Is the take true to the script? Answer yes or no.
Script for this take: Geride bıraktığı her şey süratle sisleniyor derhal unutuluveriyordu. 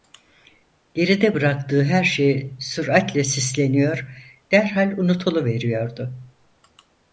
yes